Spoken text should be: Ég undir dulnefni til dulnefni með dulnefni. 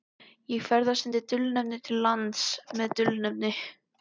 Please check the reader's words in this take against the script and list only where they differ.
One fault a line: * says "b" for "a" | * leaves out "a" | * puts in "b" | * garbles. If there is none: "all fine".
* puts in "ferðast"
* says "lands" for "dulnefni"